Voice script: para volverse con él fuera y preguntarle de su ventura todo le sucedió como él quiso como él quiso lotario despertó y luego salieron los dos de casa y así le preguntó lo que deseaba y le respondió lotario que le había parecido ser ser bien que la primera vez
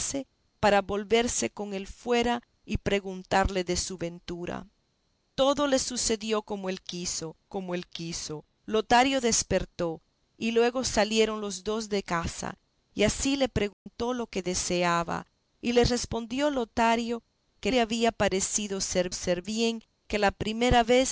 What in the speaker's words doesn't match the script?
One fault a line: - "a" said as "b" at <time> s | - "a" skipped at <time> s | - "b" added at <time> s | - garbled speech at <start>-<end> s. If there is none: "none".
none